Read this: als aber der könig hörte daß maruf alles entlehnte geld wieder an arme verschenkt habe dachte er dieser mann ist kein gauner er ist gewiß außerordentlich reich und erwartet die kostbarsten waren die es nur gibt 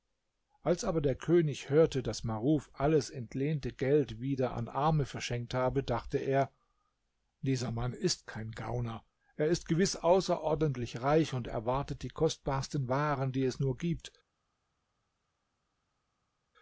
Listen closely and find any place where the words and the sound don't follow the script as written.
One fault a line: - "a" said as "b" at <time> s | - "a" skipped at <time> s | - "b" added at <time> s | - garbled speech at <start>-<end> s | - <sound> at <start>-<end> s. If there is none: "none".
none